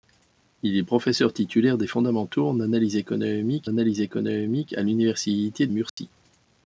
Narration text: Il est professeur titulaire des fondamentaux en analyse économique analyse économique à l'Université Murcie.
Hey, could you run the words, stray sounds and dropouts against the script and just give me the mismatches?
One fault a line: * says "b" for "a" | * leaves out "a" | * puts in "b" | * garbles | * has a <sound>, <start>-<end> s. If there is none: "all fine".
* has a dropout, 5.9-6.0 s